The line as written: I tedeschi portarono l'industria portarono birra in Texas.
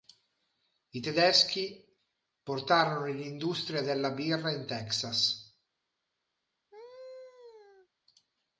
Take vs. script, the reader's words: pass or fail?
fail